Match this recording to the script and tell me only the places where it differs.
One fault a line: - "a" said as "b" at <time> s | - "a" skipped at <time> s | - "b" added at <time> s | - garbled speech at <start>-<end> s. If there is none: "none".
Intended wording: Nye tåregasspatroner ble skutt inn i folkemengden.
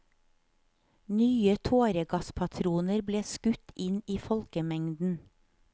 none